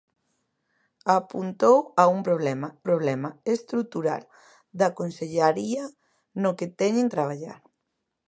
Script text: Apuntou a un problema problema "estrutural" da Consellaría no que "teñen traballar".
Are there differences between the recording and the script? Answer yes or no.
no